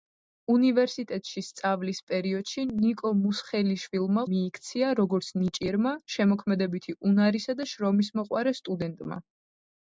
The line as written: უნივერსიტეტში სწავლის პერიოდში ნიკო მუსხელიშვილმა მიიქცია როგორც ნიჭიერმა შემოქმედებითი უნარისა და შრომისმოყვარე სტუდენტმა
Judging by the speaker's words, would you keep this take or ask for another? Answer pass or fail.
pass